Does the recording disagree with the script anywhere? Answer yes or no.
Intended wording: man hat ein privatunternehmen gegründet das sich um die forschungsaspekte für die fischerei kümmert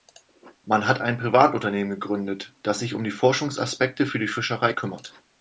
no